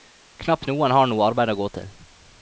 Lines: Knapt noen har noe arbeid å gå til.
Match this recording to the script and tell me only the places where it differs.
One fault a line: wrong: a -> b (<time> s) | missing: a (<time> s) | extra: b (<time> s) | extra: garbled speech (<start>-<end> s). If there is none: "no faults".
no faults